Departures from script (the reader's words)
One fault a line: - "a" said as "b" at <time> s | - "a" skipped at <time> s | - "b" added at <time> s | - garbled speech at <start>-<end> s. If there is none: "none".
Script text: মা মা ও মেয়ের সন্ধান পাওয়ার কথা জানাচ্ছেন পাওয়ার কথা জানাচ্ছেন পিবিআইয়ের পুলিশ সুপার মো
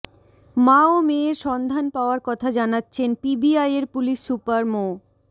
- "মা" skipped at 0.8 s
- "পাওয়ার কথা জানাচ্ছেন" skipped at 3.1 s